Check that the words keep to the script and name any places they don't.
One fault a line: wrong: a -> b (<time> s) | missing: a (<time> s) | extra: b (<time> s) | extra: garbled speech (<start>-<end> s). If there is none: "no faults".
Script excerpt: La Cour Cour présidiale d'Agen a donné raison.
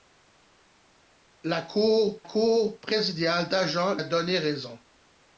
no faults